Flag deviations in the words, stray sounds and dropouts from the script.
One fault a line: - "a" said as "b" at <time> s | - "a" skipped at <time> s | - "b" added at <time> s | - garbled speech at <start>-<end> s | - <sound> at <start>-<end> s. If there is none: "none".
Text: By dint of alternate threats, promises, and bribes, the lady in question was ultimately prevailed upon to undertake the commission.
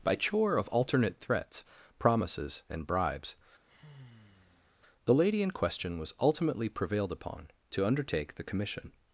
- "dint" said as "chore" at 0.1 s
- sigh at 3.7-4.7 s